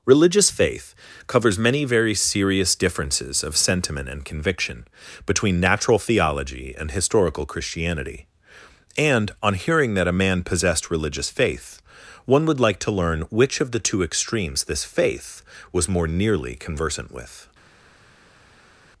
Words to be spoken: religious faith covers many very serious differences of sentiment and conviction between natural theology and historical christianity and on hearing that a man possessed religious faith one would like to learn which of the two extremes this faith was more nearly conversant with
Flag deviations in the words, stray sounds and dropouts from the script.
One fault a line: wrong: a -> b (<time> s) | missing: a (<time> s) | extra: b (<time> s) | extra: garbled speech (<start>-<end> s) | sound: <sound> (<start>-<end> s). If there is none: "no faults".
no faults